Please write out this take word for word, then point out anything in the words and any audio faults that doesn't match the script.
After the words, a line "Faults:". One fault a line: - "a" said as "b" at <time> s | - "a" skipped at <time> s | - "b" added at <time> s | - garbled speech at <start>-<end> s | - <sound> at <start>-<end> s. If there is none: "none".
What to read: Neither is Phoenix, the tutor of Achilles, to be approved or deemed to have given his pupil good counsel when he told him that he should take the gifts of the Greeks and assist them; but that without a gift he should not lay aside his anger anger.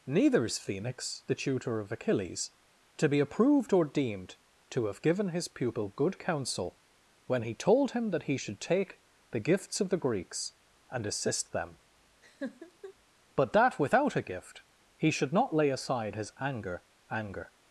Neither is Phoenix, the tutor of Achilles, to be approved or deemed to have given his pupil good counsel when he told him that he should take the gifts of the Greeks and assist them; but that without a gift he should not lay aside his anger anger.
Faults:
- laugh at 12.2-12.9 s